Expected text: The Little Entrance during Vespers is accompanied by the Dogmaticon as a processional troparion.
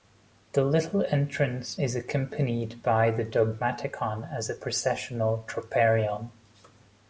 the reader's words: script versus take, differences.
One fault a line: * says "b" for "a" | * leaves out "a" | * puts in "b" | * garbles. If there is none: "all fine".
* leaves out "during Vespers"